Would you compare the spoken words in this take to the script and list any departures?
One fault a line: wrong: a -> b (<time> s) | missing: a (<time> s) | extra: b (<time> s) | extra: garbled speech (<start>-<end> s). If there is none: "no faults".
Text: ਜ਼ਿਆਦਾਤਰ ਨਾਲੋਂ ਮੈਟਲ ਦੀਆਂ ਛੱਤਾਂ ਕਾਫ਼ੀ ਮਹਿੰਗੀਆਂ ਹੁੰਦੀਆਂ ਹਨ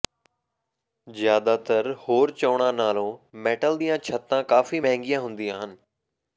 extra: ਹੋਰ ਚੋਣਾਂ (2.0 s)